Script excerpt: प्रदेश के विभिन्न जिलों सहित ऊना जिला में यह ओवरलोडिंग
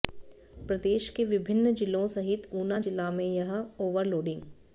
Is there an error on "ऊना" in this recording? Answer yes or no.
no